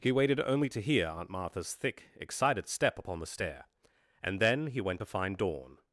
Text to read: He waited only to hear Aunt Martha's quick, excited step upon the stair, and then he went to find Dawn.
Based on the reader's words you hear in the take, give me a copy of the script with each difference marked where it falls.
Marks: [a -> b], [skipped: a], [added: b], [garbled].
He waited only to hear Aunt Martha's [quick, -> thick] excited step upon the stair, and then he went to find Dawn.